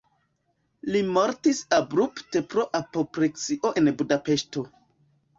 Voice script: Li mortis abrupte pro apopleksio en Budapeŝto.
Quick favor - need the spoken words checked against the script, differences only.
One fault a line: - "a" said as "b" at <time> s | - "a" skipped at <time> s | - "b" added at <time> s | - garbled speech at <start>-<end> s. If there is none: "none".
none